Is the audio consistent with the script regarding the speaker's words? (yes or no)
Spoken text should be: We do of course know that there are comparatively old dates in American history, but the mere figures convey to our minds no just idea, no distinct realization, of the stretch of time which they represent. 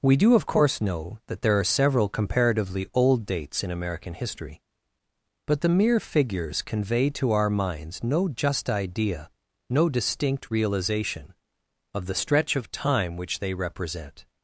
no